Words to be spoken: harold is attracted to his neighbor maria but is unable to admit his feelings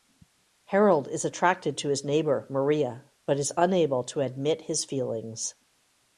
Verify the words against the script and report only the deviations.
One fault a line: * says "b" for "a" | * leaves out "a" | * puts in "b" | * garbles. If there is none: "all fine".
all fine